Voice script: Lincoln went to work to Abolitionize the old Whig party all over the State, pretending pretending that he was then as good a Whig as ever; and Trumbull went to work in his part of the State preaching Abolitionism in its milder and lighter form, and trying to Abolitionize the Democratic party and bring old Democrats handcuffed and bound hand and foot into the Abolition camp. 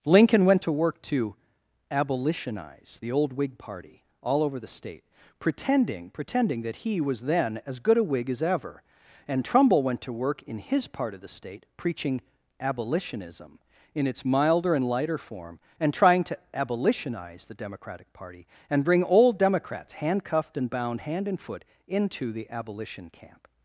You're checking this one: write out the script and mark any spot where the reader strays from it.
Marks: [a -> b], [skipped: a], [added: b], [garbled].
Lincoln went to work to Abolitionize the old Whig party all over the State, pretending pretending that he was then as good a Whig as ever; and Trumbull went to work in his part of the State preaching Abolitionism in its milder and lighter form, and trying to Abolitionize the Democratic party and bring old Democrats handcuffed and bound hand and foot into the Abolition camp.